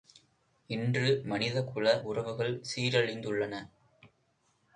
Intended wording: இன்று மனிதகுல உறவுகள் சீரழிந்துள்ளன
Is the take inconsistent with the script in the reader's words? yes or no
no